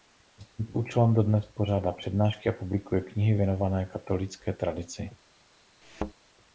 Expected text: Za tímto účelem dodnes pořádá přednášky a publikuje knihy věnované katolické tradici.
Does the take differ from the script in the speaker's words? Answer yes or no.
no